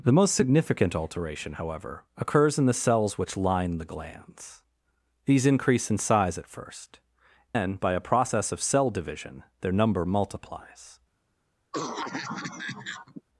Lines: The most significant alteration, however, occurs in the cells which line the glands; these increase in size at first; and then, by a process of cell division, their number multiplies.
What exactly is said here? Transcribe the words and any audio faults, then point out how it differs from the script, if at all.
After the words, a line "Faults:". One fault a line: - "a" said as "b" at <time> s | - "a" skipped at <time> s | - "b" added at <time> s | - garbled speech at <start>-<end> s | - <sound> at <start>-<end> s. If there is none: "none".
The most significant alteration, however, occurs in the cells which line the glands; these increase in size at first; then, by a process of cell division, their number multiplies.
Faults:
- "and" skipped at 7.0 s
- cough at 11.7-13.2 s